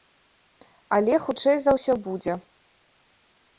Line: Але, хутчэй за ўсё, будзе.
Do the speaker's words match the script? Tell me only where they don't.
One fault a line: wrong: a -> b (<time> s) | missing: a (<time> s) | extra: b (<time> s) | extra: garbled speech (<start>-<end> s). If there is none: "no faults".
no faults